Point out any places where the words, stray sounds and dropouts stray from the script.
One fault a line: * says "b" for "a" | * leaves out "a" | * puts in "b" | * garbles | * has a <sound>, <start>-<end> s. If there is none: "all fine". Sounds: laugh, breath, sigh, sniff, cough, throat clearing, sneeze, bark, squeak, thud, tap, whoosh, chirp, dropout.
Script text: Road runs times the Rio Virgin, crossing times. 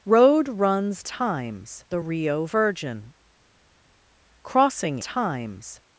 all fine